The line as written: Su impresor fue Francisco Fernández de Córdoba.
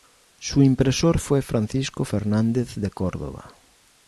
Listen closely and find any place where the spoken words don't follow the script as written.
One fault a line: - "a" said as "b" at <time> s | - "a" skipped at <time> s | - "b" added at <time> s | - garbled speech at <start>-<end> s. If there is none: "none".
none